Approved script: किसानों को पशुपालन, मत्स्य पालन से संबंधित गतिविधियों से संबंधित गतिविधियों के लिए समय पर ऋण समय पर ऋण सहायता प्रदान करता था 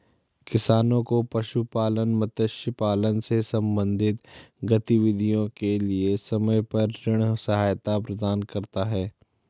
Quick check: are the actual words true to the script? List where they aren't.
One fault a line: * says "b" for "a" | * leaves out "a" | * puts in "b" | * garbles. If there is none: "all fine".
* leaves out "से संबंधित गतिविधियों"
* leaves out "समय पर ऋण"
* says "है" for "था"